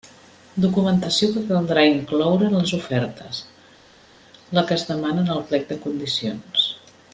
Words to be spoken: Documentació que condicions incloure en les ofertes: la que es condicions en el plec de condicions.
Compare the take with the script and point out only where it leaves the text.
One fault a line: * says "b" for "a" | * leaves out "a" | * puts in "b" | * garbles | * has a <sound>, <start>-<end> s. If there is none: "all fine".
* says "caldrà" for "condicions"
* says "demana" for "condicions"